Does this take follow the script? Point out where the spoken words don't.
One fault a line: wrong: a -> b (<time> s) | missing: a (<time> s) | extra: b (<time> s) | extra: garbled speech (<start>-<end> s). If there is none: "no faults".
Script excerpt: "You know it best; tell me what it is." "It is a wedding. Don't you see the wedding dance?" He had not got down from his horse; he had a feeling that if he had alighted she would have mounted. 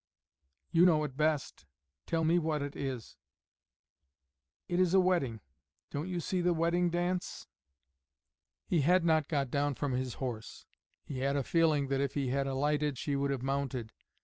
no faults